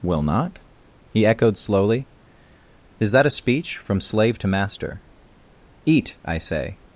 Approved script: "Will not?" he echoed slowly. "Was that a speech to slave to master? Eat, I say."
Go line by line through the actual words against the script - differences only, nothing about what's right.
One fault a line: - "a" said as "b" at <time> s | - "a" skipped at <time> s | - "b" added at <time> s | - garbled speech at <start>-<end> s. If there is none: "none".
- "Was" said as "Is" at 3.0 s
- "to" said as "from" at 3.8 s